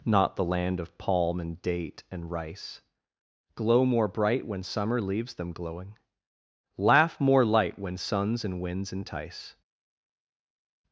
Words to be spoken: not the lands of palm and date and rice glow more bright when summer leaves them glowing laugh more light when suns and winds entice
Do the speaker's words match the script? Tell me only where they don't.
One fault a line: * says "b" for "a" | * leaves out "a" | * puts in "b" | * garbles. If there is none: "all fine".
* says "land" for "lands"